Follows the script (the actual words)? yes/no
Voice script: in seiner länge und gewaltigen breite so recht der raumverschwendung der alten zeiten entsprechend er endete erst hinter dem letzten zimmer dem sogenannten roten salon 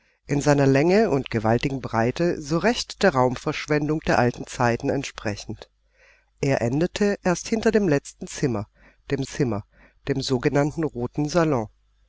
no